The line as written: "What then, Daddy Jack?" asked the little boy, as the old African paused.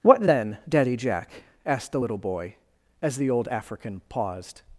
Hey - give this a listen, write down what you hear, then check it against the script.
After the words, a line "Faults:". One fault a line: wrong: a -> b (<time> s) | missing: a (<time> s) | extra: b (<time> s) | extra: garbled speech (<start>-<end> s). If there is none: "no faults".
"What then, Daddy Jack?" asked the little boy, as the old African paused.
Faults:
no faults